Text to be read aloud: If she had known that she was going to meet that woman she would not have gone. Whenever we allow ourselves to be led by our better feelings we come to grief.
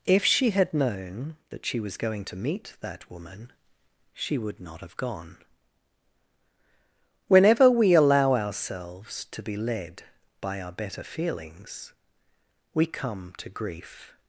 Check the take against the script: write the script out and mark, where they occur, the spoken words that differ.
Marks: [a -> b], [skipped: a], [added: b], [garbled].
If she had known that she was going to meet that woman she would not have gone. Whenever we allow ourselves to be led by our better feelings we come to grief.